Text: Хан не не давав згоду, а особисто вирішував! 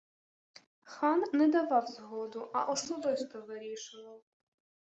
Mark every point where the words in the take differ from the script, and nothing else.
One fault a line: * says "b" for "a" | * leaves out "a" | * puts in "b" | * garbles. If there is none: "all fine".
* leaves out "не"